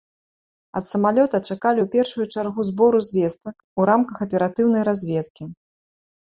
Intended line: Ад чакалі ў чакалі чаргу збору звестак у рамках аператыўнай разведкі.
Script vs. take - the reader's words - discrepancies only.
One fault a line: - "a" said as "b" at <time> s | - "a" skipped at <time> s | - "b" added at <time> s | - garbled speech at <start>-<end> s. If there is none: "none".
- "самалёта" added at 0.9 s
- "чакалі" said as "першую" at 1.9 s